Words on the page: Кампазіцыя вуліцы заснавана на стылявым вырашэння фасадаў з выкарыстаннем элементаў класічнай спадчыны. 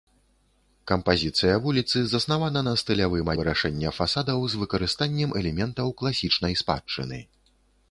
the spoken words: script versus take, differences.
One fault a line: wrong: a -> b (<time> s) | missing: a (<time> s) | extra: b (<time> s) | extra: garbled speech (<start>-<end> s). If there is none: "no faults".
no faults